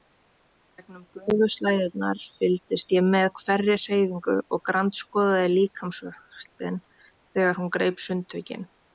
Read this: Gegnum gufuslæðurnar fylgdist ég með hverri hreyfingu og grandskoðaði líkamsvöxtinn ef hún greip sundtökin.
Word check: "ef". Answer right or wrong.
wrong